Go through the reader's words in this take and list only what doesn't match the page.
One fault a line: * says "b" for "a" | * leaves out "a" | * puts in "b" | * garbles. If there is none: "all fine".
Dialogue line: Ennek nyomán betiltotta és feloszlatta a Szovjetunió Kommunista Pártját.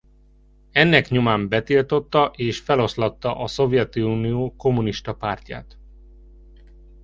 all fine